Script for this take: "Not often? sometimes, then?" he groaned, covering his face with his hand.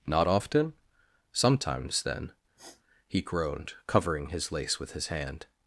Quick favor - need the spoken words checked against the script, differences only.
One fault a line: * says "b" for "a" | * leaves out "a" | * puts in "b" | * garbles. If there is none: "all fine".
* says "lace" for "face"